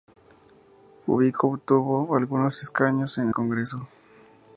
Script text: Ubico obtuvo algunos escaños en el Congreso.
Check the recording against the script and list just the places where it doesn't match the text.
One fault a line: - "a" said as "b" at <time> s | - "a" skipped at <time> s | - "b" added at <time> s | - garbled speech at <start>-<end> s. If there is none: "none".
- "el" skipped at 3.3 s